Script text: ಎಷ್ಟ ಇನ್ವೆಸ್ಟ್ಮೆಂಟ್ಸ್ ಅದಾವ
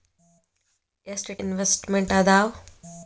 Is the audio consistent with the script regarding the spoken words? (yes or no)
yes